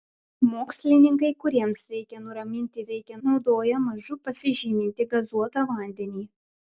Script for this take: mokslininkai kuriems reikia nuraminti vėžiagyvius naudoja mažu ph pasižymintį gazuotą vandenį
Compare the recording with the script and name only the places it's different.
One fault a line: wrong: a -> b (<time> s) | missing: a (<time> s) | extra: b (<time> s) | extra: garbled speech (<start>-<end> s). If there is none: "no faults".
wrong: vėžiagyvius -> reikia (2.9 s)
missing: ph (4.2 s)